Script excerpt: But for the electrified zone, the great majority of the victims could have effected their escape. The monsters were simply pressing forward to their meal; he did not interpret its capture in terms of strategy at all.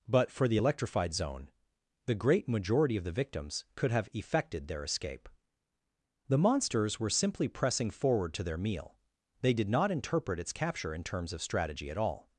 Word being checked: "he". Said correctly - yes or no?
no